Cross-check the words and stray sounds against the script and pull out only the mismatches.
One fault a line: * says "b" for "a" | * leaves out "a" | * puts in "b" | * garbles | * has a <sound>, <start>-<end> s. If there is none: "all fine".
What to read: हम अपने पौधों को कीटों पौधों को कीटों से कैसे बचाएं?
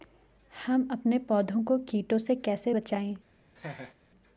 * leaves out "पौधों को कीटों"
* has a laugh, 3.6-3.9 s